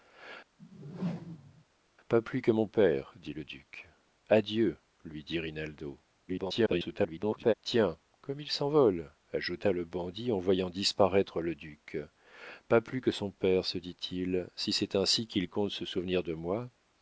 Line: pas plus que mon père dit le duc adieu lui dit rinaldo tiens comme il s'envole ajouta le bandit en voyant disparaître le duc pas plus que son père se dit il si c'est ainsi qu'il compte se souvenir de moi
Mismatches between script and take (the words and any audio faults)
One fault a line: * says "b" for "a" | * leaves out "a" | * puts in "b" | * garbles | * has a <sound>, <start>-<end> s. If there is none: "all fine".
* has a whoosh, 0.6-1.6 s
* garbles